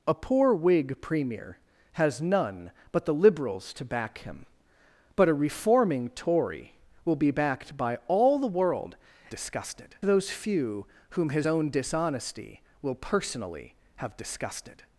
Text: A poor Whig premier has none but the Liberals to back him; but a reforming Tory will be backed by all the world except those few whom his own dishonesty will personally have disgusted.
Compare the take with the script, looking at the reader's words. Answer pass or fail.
fail